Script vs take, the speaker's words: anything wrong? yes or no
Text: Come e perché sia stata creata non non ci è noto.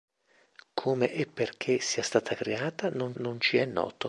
no